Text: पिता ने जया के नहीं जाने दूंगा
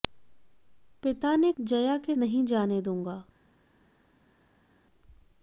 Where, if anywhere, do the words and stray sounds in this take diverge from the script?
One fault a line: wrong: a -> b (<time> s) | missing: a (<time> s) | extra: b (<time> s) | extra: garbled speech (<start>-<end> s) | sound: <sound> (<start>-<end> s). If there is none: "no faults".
no faults